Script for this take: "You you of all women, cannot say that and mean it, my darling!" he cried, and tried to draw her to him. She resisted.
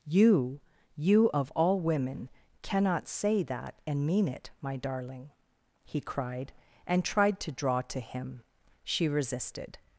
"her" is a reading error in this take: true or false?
true